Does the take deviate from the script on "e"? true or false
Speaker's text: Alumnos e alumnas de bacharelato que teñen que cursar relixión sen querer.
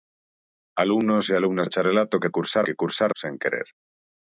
false